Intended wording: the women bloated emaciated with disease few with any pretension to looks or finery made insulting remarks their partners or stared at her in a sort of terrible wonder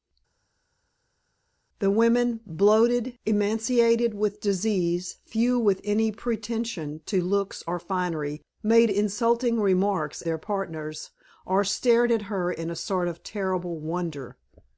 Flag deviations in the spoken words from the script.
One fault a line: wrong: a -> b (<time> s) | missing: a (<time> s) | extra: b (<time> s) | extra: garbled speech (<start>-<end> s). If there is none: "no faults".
no faults